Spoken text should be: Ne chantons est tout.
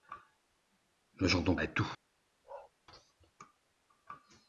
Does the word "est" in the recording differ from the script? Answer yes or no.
no